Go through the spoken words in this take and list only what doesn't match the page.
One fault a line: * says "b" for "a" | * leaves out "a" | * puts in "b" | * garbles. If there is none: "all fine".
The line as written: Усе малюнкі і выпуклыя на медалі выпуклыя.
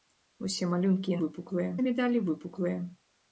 all fine